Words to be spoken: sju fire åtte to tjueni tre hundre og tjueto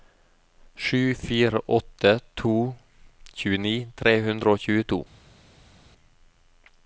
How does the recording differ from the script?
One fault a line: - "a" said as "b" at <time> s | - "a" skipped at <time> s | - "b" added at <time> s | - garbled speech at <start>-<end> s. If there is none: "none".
none